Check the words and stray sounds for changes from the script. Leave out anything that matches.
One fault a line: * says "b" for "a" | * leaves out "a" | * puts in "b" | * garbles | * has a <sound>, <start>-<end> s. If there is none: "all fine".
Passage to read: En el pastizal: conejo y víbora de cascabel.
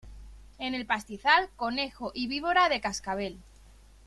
all fine